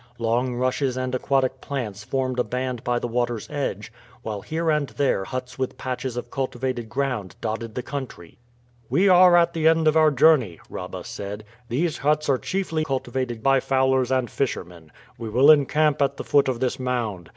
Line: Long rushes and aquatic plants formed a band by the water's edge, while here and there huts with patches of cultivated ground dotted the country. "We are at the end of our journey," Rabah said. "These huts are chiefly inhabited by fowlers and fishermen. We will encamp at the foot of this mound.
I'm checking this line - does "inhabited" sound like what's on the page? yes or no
no